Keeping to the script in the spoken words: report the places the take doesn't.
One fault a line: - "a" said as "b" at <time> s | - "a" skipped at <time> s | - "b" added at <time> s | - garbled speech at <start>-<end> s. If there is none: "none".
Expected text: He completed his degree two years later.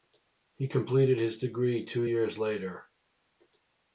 none